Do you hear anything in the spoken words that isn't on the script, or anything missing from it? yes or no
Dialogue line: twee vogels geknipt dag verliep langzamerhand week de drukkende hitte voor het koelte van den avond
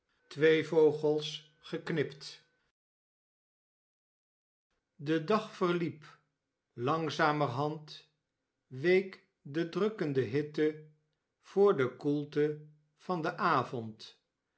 yes